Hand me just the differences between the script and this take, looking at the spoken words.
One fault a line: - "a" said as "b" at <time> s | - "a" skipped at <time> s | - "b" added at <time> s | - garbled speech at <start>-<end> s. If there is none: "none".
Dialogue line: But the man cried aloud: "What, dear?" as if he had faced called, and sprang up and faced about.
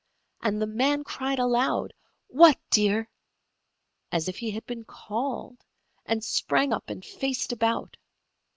- "But" said as "And" at 0.4 s
- "faced" said as "been" at 4.7 s